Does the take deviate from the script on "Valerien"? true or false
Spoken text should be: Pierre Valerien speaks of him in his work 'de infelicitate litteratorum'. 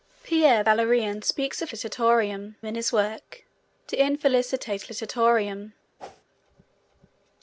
false